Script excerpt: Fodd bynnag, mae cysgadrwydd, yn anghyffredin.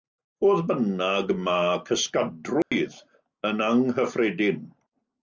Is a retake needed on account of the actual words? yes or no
no